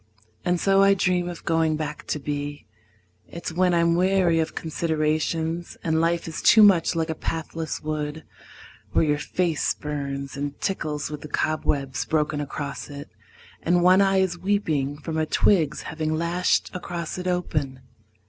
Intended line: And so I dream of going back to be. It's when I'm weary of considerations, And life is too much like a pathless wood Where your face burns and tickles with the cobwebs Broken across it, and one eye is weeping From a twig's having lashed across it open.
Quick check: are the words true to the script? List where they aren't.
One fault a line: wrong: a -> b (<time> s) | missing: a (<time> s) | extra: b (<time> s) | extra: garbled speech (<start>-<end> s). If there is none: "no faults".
no faults